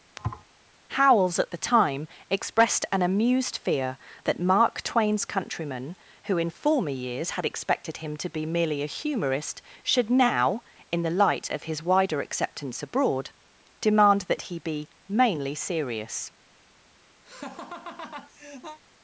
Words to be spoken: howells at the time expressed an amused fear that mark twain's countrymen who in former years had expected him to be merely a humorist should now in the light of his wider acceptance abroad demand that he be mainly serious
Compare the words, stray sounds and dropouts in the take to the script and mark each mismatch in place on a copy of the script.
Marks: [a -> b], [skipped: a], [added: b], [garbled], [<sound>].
[thud] howells at the time expressed an amused fear that mark twain's countrymen who in former years had expected him to be merely a humorist should now in the light of his wider acceptance abroad demand that he be mainly serious [laugh]